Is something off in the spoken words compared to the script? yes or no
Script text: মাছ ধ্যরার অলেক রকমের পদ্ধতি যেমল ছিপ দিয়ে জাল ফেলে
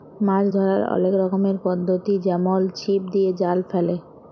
no